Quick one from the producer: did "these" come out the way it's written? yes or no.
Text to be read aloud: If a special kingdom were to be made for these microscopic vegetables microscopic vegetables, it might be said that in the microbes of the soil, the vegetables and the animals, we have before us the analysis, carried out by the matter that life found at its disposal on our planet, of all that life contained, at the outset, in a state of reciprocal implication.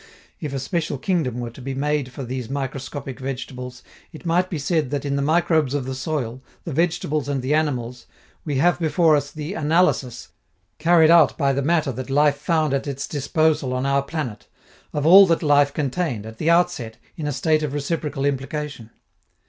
yes